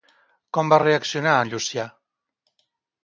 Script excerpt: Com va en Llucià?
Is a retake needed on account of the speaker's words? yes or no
yes